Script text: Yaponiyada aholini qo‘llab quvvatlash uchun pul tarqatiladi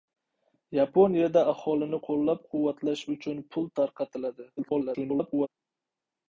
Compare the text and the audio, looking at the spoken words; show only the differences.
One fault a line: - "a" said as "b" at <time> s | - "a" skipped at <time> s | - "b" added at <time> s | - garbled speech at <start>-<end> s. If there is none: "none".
- garbled speech at 4.6-5.5 s